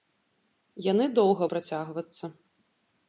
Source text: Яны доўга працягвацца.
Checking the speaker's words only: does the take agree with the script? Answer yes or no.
yes